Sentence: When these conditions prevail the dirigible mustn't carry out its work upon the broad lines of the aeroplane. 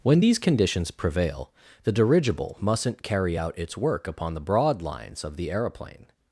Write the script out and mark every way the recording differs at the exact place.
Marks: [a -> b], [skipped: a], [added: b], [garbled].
When these conditions prevail the dirigible mustn't carry out its work upon the broad lines of the aeroplane.